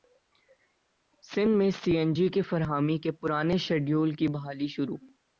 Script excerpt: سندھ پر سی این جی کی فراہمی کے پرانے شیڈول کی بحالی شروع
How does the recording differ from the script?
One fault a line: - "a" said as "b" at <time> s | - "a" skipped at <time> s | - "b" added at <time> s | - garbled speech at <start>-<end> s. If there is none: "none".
- "پر" said as "میں" at 1.6 s